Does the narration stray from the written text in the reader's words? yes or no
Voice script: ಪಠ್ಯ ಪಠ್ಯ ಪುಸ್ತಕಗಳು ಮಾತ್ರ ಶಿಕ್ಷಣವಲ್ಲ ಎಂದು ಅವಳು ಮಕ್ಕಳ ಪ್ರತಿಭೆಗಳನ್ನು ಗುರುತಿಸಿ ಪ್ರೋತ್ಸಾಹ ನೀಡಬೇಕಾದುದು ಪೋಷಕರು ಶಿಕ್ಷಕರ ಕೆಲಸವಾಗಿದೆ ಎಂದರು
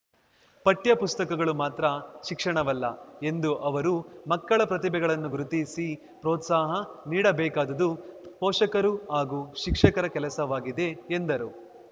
yes